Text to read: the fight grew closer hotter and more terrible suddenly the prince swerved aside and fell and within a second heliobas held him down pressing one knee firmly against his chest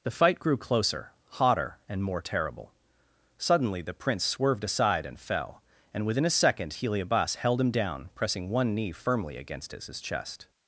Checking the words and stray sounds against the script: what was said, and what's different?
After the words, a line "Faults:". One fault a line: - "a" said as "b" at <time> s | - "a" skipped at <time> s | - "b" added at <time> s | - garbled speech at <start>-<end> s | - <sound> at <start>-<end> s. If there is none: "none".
the fight grew closer hotter and more terrible suddenly the prince swerved aside and fell and within a second heliobas held him down pressing one knee firmly against his his chest
Faults:
- "his" added at 9.9 s